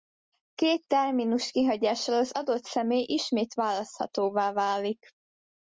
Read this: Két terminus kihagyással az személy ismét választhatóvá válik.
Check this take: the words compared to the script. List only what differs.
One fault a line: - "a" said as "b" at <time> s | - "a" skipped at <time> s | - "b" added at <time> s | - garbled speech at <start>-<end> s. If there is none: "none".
- "adott" added at 2.3 s